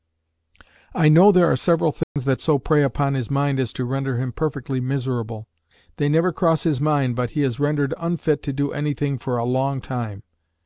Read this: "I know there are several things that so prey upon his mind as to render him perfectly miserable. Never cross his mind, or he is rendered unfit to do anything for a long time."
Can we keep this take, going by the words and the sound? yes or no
no